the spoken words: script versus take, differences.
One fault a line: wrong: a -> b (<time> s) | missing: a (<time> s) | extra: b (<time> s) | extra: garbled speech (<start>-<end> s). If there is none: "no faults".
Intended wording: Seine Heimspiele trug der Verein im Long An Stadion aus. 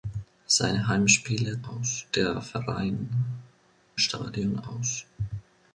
wrong: trug -> aus (1.6 s)
missing: im Long An (3.1 s)